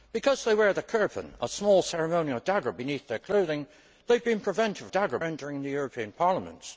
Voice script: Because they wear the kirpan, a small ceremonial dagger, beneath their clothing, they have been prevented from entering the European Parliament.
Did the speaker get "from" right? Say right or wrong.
wrong